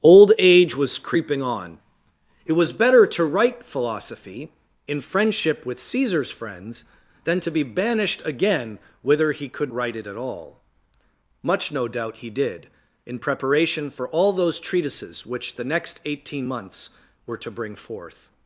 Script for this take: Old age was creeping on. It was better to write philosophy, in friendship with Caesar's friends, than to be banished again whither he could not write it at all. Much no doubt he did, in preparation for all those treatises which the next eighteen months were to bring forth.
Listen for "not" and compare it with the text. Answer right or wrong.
wrong